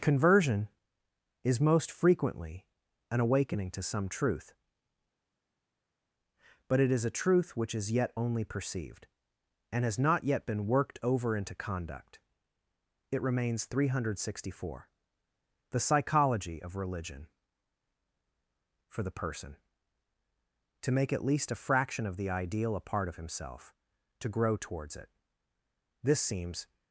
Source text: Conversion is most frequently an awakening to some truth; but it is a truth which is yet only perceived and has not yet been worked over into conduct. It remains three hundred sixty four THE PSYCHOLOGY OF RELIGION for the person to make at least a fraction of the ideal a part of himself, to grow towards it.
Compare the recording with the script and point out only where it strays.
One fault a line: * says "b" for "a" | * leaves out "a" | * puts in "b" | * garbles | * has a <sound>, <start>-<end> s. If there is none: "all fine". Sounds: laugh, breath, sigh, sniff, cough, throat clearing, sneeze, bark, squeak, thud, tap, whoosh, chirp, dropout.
* puts in "This seems"